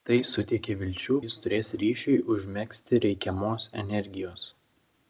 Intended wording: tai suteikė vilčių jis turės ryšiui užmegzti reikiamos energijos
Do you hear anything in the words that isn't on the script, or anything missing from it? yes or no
no